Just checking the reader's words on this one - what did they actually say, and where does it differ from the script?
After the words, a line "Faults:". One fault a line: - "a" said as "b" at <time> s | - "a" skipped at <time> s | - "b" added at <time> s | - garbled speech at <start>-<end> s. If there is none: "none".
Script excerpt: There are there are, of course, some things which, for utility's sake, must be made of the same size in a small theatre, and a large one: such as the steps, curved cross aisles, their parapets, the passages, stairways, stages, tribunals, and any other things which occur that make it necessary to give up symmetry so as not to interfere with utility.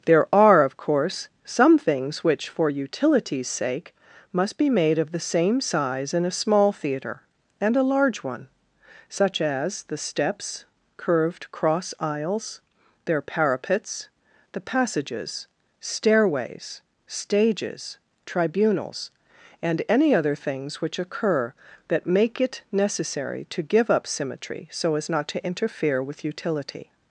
There are, of course, some things which, for utility's sake, must be made of the same size in a small theatre, and a large one: such as the steps, curved cross aisles, their parapets, the passages, stairways, stages, tribunals, and any other things which occur that make it necessary to give up symmetry so as not to interfere with utility.
Faults:
- "there are" skipped at 0.6 s